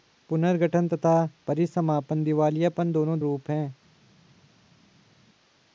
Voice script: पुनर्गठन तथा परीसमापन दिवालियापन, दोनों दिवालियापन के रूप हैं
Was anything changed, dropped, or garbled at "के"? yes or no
yes